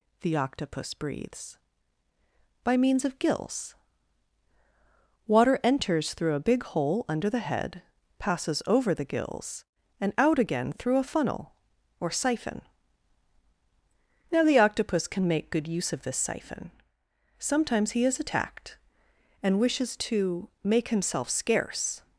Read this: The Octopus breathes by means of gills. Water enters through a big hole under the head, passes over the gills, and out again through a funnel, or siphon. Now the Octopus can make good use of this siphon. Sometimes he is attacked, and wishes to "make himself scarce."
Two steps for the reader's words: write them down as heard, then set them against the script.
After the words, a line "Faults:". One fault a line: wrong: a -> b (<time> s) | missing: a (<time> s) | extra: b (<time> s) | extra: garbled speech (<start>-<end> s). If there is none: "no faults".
The Octopus breathes by means of gills. Water enters through a big hole under the head, passes over the gills, and out again through a funnel, or siphon. Now the Octopus can make good use of this siphon. Sometimes he is attacked, and wishes to "make himself scarce."
Faults:
no faults